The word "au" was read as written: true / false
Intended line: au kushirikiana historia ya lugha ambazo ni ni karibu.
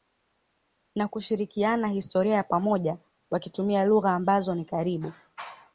false